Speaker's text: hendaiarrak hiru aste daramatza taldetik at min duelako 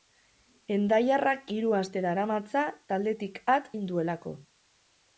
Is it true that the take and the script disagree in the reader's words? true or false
false